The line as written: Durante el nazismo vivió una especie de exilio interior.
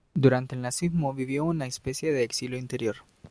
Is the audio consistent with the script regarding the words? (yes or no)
yes